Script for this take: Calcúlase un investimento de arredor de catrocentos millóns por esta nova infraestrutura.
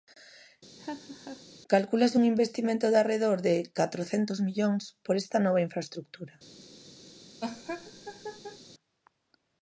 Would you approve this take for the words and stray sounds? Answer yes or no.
no